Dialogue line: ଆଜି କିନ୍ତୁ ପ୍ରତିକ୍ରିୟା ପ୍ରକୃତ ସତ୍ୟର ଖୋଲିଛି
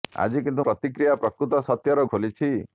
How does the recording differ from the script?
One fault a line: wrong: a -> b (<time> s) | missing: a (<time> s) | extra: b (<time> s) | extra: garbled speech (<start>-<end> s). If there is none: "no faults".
no faults